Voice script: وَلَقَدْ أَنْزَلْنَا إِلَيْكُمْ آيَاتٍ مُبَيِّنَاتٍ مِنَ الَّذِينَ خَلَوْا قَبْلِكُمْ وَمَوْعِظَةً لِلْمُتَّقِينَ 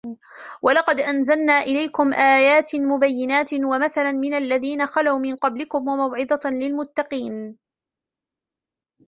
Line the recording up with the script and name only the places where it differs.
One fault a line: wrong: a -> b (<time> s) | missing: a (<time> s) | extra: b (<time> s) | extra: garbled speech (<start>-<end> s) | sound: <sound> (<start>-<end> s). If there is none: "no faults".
extra: وَمَثَلًا (3.5 s)
extra: مِنْ (5.2 s)